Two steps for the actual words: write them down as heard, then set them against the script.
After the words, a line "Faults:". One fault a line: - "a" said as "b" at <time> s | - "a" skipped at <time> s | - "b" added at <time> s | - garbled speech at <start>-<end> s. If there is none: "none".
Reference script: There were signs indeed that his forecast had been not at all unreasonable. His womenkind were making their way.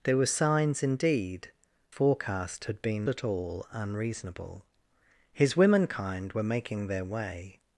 There were signs indeed forecast had been at all unreasonable. His womenkind were making their way.
Faults:
- "that his" skipped at 1.5 s
- "not" skipped at 3.1 s